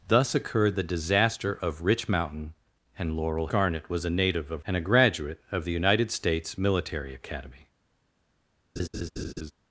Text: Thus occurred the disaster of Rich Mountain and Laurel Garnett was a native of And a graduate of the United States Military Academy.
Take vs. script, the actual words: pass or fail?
pass